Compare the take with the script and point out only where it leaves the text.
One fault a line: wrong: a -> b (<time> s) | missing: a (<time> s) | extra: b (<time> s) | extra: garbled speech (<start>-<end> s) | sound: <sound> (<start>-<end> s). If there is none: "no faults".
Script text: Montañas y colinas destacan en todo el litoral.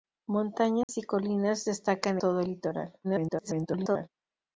sound: dropout (0.8-0.9 s)
missing: en (2.2 s)
extra: garbled speech (3.0-4.1 s)